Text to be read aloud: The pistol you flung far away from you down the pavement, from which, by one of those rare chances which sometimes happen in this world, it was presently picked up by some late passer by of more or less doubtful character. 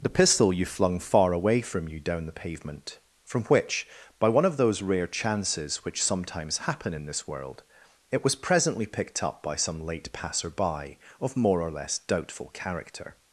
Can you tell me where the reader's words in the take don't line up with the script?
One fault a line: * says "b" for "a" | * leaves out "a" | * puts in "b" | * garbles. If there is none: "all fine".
all fine